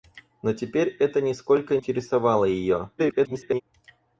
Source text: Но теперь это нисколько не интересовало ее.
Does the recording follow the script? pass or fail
fail